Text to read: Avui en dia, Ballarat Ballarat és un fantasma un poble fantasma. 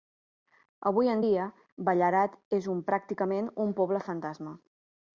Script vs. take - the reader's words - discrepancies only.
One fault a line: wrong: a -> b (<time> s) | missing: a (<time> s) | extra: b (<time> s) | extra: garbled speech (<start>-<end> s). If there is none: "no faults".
missing: Ballarat (2.4 s)
wrong: fantasma -> pràcticament (2.9 s)